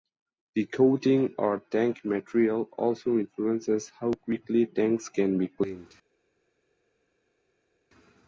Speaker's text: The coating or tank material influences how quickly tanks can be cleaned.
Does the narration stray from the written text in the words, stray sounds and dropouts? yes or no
yes